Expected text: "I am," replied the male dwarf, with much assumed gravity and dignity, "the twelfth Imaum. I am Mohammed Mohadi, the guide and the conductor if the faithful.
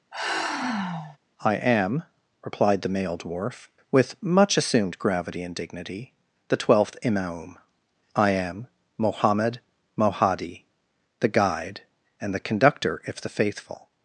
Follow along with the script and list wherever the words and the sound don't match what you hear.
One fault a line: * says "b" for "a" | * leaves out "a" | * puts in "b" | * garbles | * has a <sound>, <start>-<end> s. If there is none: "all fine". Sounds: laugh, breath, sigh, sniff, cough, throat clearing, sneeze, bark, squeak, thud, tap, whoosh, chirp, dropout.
* has a sigh, 0.1-1.2 s